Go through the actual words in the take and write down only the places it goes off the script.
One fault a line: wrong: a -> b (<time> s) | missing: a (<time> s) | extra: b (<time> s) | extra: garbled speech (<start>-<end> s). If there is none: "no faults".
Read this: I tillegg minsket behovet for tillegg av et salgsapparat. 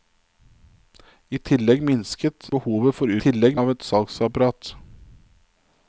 no faults